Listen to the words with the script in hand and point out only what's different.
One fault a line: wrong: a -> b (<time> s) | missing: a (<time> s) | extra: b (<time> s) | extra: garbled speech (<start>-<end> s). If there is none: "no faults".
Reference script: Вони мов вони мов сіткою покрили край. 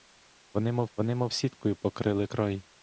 no faults